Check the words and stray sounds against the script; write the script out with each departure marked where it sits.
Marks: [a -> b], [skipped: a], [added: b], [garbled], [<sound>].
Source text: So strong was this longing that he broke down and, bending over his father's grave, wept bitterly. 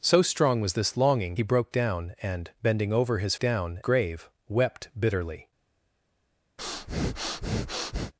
So strong was this longing [skipped: that] he broke down and, bending over his [father's -> down] grave, wept bitterly. [breath]